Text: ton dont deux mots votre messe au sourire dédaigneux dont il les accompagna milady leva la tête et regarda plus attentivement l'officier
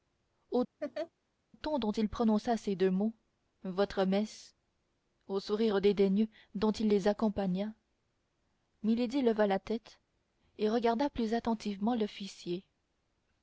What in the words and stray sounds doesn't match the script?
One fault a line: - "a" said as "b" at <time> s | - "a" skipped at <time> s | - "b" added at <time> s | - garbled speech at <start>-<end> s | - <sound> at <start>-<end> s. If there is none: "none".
- laugh at 0.8-1.1 s
- "il prononça ces" added at 1.9 s